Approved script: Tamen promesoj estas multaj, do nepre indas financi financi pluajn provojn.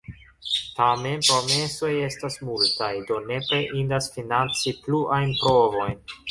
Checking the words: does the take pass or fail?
fail